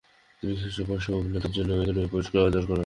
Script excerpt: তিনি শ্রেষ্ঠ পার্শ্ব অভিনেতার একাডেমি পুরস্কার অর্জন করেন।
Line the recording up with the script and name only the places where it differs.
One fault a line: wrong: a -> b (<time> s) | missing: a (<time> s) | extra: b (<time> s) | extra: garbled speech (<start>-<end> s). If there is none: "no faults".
extra: জন্য (1.5 s)